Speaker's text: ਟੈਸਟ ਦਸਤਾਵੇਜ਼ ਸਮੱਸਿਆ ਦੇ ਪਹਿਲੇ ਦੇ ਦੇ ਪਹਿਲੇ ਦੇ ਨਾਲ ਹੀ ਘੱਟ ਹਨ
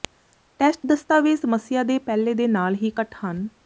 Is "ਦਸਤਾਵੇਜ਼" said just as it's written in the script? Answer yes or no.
yes